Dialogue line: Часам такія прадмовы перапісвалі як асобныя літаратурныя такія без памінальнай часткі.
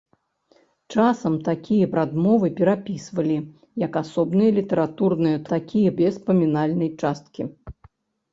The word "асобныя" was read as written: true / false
true